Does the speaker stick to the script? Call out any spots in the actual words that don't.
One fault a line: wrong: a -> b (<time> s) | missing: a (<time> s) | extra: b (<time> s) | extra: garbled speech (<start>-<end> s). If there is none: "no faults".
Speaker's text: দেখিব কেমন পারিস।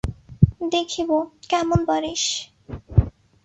no faults